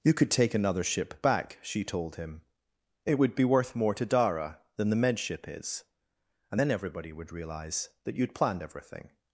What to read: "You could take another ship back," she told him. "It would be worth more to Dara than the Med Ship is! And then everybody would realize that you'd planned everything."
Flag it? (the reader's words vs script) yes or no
no